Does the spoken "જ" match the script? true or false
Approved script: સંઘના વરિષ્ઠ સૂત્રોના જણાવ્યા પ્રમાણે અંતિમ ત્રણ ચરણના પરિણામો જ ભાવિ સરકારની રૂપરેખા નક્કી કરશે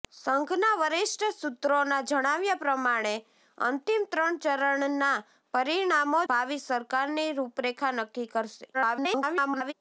false